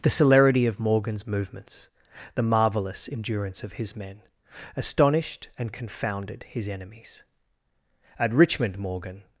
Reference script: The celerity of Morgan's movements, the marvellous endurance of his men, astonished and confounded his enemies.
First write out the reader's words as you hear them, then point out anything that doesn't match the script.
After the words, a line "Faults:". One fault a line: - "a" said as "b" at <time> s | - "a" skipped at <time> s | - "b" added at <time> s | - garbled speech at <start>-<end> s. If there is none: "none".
The celerity of Morgan's movements, the marvellous endurance of his men, astonished and confounded his enemies. At Richmond, Morgan
Faults:
- "At Richmond Morgan" added at 8.2 s